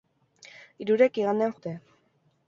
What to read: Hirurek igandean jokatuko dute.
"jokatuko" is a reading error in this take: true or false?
true